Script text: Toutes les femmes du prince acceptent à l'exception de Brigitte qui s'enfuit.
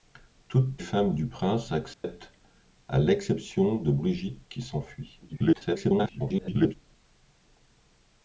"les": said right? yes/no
no